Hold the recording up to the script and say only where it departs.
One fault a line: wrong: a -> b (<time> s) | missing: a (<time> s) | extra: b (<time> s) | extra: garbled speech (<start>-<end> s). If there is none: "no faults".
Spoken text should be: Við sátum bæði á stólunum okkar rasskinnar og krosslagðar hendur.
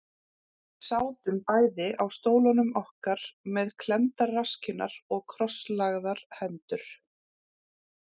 extra: með klemmdar (3.6 s)